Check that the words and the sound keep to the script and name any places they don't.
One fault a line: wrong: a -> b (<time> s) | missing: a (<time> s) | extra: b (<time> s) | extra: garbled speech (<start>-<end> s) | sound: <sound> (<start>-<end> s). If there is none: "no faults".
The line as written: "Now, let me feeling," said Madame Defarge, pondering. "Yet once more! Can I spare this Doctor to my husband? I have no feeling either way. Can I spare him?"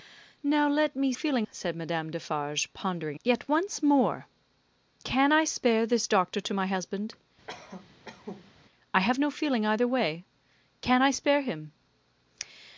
sound: cough (7.5-8.5 s)